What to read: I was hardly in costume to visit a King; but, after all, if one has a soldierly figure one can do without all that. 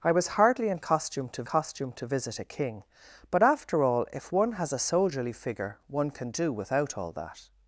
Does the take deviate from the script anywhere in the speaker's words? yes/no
yes